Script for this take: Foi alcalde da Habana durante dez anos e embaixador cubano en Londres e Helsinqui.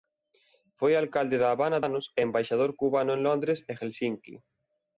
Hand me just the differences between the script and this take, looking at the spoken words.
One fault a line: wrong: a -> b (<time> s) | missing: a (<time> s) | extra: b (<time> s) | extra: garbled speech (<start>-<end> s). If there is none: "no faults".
missing: durante dez (1.8 s)